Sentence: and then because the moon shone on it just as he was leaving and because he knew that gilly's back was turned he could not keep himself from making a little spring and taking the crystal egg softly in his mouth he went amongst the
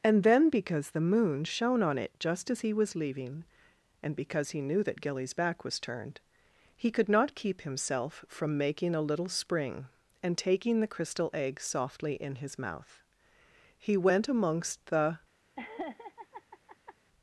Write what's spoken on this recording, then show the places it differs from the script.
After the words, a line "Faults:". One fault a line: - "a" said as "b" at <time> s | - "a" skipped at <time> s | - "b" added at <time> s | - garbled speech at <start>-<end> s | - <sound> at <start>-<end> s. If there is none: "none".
and then because the moon shone on it just as he was leaving and because he knew that gilly's back was turned he could not keep himself from making a little spring and taking the crystal egg softly in his mouth he went amongst the
Faults:
- laugh at 15.6-17.0 s